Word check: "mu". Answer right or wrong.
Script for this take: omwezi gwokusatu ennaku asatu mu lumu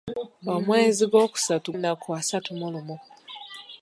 right